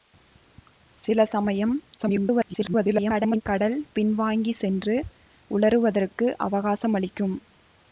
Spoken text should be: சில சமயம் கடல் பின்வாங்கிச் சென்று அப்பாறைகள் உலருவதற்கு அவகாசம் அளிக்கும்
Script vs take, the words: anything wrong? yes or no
yes